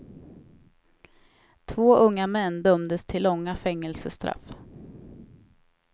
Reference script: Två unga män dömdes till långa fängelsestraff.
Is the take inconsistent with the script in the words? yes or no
no